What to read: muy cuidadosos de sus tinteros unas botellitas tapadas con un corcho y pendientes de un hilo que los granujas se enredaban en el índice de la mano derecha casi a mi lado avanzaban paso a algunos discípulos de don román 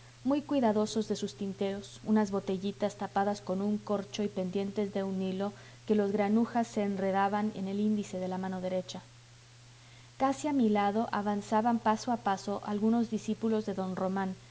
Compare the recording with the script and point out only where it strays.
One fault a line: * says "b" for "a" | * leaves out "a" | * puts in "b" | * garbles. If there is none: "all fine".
* puts in "paso"